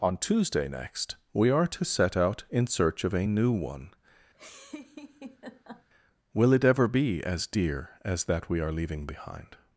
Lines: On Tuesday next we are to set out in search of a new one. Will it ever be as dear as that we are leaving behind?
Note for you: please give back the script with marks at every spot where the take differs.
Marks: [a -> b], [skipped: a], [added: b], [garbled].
On Tuesday next we are to set out in search of a new one. Will it ever be as dear as that we are leaving behind?